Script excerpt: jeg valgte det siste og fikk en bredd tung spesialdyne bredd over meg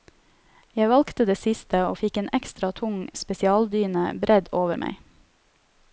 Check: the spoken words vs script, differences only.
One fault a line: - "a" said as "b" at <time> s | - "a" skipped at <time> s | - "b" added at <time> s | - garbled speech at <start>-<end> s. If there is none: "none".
- "bredd" said as "ekstra" at 2.4 s